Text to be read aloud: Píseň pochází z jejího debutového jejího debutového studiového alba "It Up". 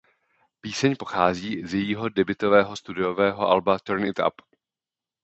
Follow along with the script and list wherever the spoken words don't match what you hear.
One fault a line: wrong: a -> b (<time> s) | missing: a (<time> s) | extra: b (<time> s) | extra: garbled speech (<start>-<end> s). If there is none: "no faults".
missing: jejího debutového (2.8 s)
extra: Turn (3.8 s)